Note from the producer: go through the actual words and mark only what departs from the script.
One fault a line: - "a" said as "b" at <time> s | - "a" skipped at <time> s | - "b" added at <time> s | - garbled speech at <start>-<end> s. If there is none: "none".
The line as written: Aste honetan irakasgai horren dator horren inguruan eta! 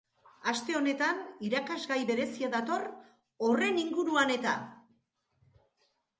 - "horren" said as "berezia" at 2.1 s